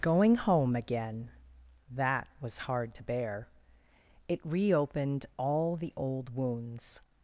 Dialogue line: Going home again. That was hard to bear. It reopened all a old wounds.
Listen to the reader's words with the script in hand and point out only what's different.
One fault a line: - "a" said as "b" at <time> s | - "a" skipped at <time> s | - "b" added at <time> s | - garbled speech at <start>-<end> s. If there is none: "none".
- "a" said as "the" at 5.8 s